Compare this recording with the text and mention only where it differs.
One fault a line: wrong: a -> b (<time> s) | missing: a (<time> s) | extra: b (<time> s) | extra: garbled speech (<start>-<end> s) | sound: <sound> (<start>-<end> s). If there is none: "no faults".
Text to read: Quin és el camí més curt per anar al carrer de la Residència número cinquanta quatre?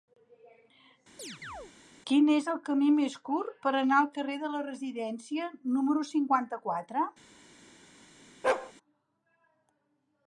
sound: chirp (1.2-1.7 s)
sound: bark (8.4-8.7 s)